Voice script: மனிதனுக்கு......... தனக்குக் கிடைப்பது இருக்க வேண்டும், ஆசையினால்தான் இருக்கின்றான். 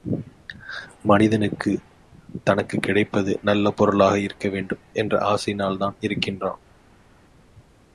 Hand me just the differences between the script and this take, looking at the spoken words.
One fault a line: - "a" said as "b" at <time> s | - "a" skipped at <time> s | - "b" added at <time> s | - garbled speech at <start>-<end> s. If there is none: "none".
- "நல்ல பொருளாக" added at 3.4 s
- "என்ற" added at 4.9 s